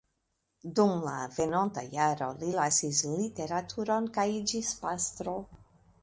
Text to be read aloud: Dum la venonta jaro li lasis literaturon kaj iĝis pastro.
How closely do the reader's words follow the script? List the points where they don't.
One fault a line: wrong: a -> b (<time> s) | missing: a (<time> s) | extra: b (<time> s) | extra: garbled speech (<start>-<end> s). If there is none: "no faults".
no faults